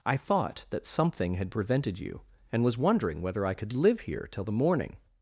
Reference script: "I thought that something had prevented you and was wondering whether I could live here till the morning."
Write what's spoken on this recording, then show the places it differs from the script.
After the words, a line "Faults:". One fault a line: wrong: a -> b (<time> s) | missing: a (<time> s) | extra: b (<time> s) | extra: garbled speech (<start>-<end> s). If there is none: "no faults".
"I thought that something had prevented you and was wondering whether I could live here till the morning."
Faults:
no faults